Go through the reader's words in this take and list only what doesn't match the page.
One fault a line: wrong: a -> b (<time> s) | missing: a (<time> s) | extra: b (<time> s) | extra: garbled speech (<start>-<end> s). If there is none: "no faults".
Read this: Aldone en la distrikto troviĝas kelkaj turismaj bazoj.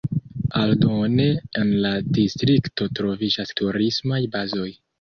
missing: kelkaj (3.5 s)